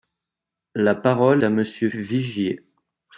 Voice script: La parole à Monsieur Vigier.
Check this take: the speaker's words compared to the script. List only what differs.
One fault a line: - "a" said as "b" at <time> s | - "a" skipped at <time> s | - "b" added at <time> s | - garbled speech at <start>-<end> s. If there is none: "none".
none